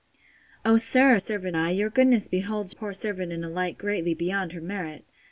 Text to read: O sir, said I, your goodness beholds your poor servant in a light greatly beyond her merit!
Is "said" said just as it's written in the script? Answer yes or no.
no